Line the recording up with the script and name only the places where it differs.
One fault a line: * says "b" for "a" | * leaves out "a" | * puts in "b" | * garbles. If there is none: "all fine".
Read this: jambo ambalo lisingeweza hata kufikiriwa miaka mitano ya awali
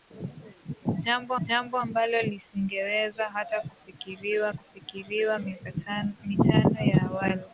* puts in "jambo"
* puts in "kufikiriwa"